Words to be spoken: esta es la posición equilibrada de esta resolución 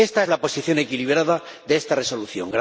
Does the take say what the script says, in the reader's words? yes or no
yes